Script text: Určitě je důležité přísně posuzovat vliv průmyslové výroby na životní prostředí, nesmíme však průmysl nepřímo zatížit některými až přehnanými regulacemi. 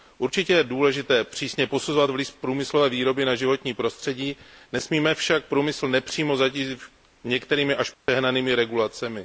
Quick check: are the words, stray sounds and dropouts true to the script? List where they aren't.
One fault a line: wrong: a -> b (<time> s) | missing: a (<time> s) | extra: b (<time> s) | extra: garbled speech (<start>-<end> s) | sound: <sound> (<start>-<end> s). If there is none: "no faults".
sound: dropout (7.9-8.1 s)